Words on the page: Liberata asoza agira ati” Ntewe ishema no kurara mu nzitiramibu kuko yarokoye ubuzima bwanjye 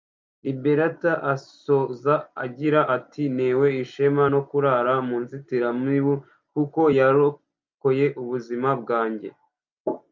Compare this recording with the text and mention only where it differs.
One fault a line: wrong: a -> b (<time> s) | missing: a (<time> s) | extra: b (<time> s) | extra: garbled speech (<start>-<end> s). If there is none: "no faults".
no faults